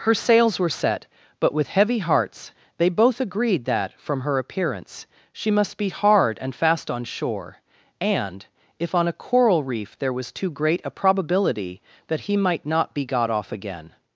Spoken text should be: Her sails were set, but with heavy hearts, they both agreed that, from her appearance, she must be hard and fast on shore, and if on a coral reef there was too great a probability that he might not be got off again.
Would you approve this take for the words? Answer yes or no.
yes